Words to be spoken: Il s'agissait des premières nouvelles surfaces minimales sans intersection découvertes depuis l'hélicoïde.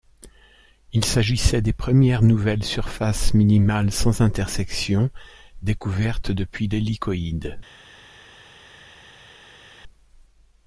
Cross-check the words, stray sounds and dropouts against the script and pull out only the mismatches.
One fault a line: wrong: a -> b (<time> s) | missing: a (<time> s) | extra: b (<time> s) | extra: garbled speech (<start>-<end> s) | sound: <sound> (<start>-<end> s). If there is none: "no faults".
no faults